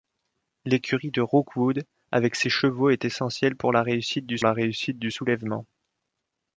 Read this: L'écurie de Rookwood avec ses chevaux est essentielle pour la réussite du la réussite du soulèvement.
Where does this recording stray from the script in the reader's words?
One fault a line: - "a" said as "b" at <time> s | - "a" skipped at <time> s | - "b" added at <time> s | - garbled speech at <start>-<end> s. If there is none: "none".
none